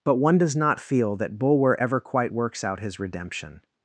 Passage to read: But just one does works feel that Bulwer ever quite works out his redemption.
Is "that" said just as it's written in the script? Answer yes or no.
yes